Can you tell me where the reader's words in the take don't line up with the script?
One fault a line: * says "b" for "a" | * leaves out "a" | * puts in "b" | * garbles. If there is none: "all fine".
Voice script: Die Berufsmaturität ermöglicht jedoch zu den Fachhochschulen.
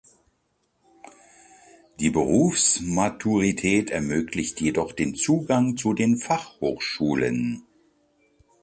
* puts in "den Zugang"